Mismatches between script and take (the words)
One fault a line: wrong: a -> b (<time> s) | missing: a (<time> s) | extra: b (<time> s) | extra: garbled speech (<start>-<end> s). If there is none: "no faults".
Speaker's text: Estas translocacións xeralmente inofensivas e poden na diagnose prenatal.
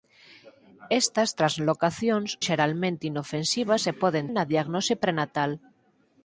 no faults